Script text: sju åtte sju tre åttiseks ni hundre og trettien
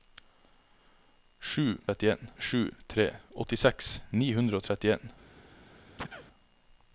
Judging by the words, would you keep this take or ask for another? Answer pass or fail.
fail